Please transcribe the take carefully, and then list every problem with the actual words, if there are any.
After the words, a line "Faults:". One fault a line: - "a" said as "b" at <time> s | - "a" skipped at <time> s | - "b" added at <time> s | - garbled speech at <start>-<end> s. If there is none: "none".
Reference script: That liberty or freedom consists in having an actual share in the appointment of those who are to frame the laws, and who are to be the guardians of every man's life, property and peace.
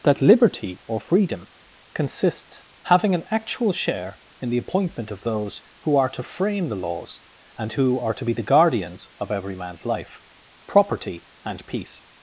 That liberty or freedom consists having an actual share in the appointment of those who are to frame the laws, and who are to be the guardians of every man's life, property and peace.
Faults:
- "in" skipped at 2.6 s